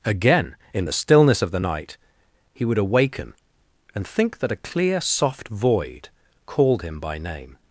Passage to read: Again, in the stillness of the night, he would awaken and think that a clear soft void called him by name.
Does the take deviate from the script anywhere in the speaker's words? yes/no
no